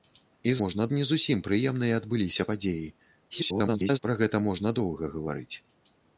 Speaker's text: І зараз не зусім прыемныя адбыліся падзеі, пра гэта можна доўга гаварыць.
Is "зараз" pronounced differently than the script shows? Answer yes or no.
yes